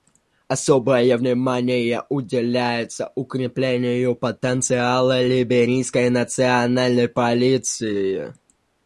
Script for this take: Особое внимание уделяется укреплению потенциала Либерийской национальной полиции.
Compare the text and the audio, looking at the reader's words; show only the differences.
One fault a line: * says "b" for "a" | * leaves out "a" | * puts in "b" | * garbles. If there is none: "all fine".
all fine